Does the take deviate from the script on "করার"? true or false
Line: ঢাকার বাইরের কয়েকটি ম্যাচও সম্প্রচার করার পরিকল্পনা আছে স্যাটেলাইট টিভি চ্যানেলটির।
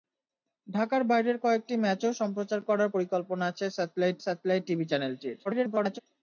false